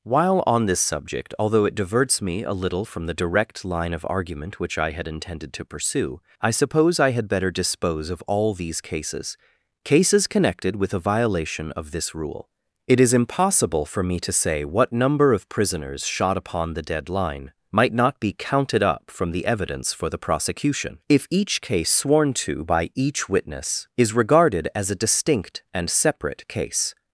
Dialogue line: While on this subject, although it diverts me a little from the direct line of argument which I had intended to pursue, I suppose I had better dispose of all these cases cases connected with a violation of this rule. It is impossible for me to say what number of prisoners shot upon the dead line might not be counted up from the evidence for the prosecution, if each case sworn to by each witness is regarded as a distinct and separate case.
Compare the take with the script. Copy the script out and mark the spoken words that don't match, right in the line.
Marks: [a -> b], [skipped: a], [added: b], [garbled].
While on this subject, although it diverts me a little from the direct line of argument which I had intended to pursue, I suppose I had better dispose of all these cases cases connected with a violation of this rule. It is impossible for me to say what number of prisoners shot upon the dead line might not be counted up from the evidence for the prosecution, if each case sworn to by each witness is regarded as a distinct and separate case.